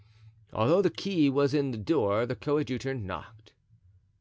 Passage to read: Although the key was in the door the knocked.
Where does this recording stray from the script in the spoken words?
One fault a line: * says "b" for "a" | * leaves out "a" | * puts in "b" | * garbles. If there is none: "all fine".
* puts in "coadjutor"